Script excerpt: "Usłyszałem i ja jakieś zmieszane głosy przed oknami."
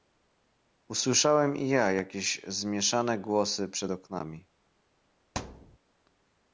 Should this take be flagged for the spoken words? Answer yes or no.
no